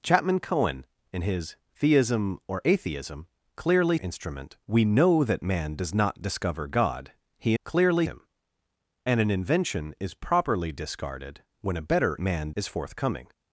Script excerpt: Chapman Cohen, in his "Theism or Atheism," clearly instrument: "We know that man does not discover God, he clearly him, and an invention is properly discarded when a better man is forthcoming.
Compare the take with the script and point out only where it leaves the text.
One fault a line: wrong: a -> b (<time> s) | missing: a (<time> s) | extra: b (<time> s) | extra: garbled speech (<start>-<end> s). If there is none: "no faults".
no faults